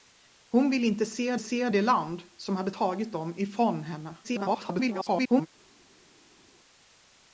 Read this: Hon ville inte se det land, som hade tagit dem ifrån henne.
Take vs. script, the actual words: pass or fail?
fail